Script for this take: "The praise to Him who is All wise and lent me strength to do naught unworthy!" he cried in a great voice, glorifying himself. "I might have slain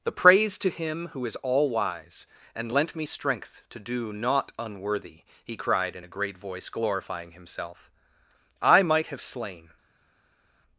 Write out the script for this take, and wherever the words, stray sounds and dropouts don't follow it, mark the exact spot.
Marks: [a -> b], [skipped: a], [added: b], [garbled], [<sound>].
"The praise to Him who is All wise and lent me strength to do naught unworthy!" he cried in a great voice, glorifying himself. "I might have slain